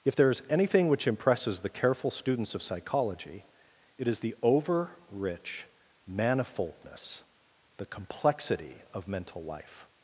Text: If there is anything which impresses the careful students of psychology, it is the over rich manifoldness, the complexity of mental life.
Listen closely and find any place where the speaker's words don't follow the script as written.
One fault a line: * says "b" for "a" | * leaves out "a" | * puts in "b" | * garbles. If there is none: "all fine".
all fine